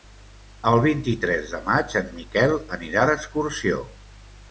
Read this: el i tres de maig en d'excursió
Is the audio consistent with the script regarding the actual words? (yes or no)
no